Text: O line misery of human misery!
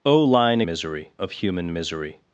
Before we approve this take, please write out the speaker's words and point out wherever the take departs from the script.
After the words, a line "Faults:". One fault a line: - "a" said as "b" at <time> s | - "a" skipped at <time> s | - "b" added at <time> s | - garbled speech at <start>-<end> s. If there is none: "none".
O line misery of human misery!
Faults:
none